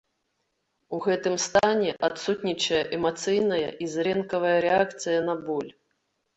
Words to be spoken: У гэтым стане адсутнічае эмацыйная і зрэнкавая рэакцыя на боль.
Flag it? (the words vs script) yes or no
no